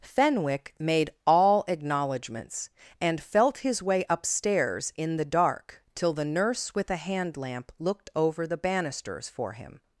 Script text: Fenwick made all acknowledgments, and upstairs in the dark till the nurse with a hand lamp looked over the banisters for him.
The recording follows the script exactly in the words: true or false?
false